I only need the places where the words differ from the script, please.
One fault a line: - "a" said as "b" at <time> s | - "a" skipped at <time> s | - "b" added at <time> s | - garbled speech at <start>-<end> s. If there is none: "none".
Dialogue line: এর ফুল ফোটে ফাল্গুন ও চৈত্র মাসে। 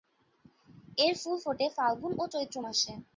none